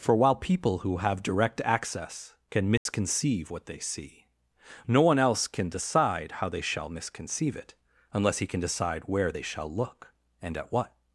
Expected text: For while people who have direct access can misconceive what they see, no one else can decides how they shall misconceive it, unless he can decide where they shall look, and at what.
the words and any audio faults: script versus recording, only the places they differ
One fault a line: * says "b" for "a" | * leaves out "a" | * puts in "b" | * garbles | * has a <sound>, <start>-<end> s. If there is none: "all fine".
* has a dropout, 2.8-2.9 s
* says "decide" for "decides"